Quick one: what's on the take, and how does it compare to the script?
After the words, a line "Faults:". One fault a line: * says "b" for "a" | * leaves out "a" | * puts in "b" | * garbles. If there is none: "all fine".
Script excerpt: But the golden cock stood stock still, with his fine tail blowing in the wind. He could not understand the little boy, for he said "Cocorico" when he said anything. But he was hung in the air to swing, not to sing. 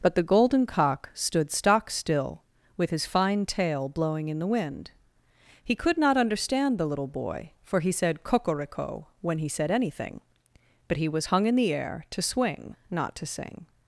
But the golden cock stood stock still, with his fine tail blowing in the wind. He could not understand the little boy, for he said "Cocorico" when he said anything. But he was hung in the air to swing, not to sing.
Faults:
all fine